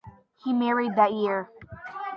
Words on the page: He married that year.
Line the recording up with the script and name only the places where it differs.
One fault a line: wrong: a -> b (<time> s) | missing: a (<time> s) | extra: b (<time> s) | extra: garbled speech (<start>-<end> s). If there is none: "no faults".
no faults